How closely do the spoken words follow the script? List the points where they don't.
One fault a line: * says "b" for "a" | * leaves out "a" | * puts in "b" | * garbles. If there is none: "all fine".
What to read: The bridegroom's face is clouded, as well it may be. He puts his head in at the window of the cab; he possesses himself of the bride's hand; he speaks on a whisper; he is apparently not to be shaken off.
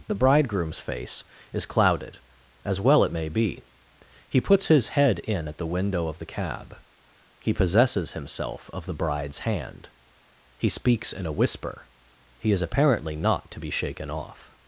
* says "in" for "on"